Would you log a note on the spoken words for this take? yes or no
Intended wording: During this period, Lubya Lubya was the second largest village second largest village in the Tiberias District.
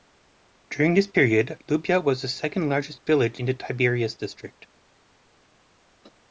yes